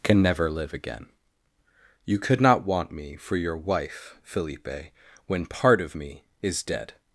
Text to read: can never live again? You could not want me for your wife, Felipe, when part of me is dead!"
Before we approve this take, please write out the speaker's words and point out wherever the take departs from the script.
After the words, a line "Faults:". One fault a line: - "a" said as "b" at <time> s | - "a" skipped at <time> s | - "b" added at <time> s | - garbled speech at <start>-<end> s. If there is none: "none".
can never live again? You could not want me for your wife, Felipe, when part of me is dead!"
Faults:
none